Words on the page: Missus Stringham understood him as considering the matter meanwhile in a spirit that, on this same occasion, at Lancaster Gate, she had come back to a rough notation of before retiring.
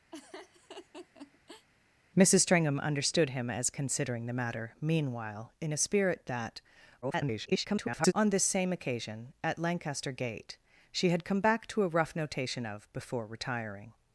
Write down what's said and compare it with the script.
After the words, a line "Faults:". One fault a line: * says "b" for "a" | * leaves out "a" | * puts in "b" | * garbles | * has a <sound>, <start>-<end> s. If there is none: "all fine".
Missus Stringham understood him as considering the matter meanwhile in a spirit that, [garbled] on this same occasion, at Lancaster Gate, she had come back to a rough notation of before retiring.
Faults:
* has a laugh, 0.1-1.7 s
* garbles